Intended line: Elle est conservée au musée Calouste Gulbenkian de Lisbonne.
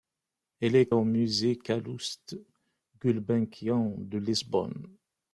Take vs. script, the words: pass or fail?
fail